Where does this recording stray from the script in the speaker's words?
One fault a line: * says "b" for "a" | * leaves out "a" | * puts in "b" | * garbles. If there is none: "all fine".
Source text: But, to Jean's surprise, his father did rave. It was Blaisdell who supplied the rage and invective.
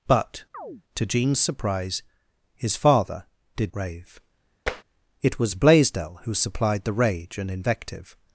all fine